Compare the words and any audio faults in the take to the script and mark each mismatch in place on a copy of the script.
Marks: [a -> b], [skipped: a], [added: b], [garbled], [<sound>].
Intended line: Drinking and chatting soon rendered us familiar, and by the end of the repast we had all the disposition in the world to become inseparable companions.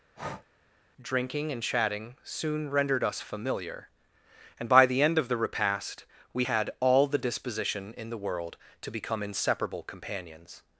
[breath] Drinking and chatting soon rendered us familiar, and by the end of the repast we had all the disposition in the world to become inseparable companions.